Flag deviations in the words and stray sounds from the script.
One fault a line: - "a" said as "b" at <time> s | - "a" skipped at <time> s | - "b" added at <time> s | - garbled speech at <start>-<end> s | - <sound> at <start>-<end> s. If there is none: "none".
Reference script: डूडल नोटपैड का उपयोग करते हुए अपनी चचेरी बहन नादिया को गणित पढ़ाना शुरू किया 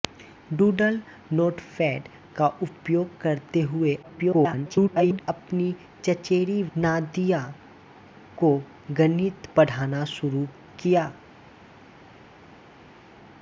- garbled speech at 4.0-5.2 s
- "बहन" skipped at 6.6 s